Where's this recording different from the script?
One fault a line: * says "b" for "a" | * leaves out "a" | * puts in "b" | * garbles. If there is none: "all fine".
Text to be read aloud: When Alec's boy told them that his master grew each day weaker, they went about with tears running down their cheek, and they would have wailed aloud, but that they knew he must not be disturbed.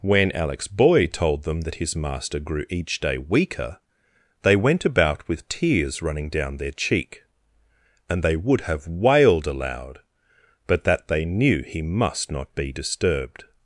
all fine